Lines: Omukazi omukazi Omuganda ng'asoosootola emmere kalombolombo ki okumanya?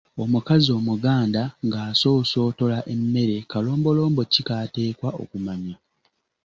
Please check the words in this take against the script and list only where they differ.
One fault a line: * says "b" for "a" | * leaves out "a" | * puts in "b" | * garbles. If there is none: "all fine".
* leaves out "omukazi"
* puts in "k'ateekwa"